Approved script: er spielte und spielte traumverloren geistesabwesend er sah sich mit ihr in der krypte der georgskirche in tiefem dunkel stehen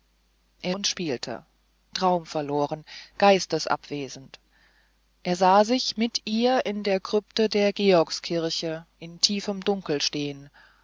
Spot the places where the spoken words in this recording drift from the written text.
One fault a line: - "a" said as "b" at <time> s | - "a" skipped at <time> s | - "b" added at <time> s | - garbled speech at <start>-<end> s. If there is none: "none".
- "spielte" skipped at 0.7 s